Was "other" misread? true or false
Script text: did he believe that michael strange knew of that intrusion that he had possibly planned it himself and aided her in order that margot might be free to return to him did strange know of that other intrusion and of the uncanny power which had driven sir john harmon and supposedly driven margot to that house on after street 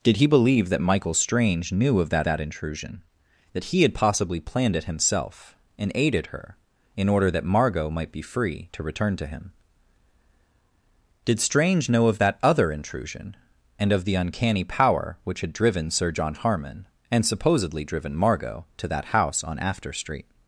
false